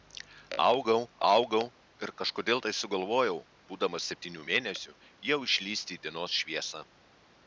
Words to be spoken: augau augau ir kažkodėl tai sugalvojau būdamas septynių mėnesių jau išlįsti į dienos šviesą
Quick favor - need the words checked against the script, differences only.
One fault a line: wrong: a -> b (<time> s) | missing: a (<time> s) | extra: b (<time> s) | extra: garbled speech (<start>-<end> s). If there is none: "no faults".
no faults